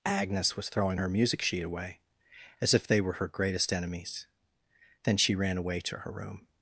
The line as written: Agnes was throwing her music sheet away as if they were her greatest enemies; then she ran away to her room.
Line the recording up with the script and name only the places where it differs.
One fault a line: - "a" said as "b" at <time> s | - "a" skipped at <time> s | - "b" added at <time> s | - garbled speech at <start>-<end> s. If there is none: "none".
none